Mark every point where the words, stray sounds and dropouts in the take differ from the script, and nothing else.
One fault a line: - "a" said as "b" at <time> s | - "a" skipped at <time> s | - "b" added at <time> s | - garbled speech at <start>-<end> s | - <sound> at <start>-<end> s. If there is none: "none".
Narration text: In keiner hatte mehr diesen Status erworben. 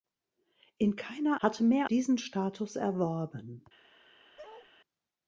- bark at 4.4-4.7 s